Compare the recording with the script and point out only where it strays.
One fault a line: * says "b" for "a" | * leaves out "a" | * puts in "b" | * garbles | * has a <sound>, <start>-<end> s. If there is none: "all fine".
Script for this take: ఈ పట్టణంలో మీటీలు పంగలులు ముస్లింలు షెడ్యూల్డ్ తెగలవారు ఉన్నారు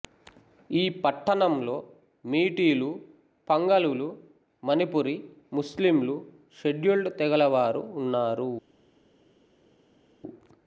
* puts in "మణిపురి"